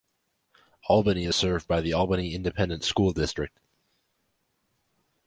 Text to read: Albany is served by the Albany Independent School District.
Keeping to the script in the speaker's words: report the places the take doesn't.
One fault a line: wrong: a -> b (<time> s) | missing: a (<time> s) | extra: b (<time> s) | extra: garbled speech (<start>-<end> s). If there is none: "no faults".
no faults